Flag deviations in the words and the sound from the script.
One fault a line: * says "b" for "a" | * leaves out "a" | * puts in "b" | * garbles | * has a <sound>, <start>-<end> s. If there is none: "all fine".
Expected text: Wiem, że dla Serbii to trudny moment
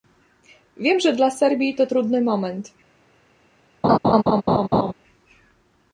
* has a laugh, 3.8-4.9 s